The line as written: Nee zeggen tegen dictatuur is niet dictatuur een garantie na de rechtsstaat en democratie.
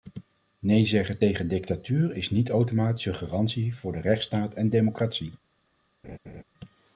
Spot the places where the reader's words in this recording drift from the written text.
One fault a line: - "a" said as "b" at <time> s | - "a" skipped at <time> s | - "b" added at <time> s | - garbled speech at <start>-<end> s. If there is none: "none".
- "dictatuur" said as "automatisch" at 2.5 s
- "na" said as "voor" at 3.7 s